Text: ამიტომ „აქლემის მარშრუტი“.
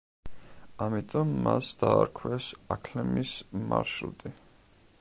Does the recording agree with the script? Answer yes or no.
no